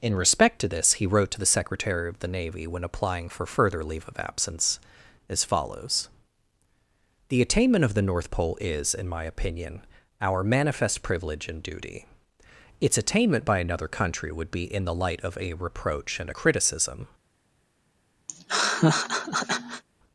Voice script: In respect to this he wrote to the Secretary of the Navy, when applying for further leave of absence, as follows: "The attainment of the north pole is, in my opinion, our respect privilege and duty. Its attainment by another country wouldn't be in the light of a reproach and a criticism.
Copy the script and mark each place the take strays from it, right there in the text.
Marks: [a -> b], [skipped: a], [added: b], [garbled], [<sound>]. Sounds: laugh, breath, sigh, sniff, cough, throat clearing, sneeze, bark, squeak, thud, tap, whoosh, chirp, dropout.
In respect to this he wrote to the Secretary of the Navy, when applying for further leave of absence, as follows: "The attainment of the north pole is, in my opinion, our [respect -> manifest] privilege and duty. Its attainment by another country [wouldn't -> would] be in the light of a reproach and a criticism. [laugh]